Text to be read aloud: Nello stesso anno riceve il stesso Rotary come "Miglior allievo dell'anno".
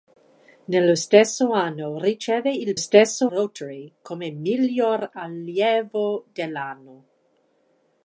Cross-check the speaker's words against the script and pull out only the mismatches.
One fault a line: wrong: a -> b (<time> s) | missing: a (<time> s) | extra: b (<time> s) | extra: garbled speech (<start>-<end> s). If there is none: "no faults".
no faults